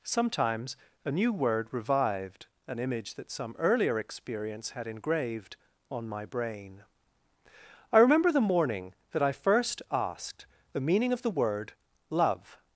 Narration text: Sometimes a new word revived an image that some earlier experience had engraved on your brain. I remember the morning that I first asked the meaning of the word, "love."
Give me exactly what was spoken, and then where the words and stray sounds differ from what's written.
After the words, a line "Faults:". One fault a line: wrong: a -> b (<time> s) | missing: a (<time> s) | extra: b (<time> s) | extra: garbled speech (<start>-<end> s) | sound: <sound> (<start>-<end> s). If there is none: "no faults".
Sometimes a new word revived an image that some earlier experience had engraved on my brain. I remember the morning that I first asked the meaning of the word, "love."
Faults:
wrong: your -> my (6.1 s)